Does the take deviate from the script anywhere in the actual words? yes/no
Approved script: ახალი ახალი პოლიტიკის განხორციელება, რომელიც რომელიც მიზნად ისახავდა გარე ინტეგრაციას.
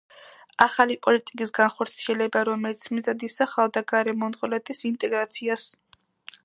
yes